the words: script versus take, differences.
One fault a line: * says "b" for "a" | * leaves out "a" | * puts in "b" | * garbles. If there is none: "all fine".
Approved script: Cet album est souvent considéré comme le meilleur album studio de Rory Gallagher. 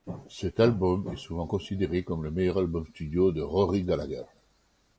all fine